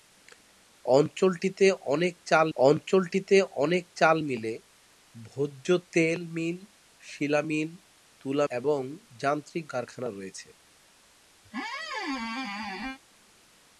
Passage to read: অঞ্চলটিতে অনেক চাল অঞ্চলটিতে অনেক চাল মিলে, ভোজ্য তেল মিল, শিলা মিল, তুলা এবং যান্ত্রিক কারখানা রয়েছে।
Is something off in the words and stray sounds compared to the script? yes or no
yes